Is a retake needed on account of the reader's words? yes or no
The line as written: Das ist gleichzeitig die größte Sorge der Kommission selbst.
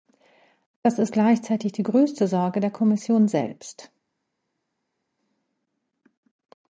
no